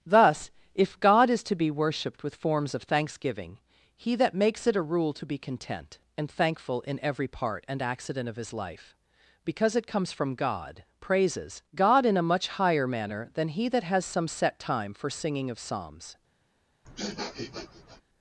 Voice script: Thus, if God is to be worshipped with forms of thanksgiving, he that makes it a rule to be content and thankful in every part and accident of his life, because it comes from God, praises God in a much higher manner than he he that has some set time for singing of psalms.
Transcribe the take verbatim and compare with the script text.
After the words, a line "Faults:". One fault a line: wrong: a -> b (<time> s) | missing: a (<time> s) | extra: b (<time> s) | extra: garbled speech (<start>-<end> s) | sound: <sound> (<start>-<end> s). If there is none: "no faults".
Thus, if God is to be worshipped with forms of thanksgiving, he that makes it a rule to be content and thankful in every part and accident of his life, because it comes from God, praises God in a much higher manner than he that has some set time for singing of psalms.
Faults:
missing: he (13.7 s)
sound: sniff (16.8-18.0 s)